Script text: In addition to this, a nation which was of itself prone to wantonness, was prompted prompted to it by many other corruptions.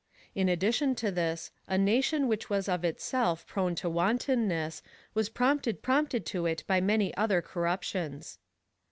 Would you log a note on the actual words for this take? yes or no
no